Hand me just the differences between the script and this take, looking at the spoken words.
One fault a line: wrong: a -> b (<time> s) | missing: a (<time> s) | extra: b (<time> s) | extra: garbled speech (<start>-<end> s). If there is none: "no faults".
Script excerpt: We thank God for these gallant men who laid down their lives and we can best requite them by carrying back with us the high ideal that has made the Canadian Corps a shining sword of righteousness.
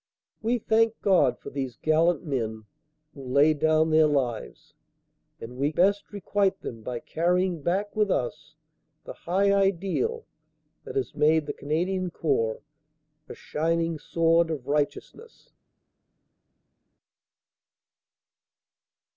missing: can (5.7 s)